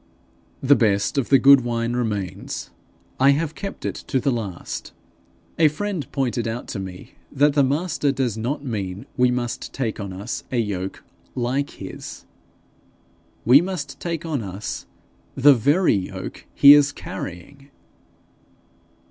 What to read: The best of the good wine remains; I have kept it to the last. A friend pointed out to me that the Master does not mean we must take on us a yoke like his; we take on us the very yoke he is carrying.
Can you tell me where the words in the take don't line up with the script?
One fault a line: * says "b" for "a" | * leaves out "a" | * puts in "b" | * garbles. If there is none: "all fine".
* puts in "must"